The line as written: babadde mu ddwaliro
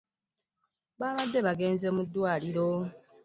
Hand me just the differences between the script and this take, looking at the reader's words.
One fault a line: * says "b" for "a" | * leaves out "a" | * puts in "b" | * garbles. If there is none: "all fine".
* puts in "bagenze"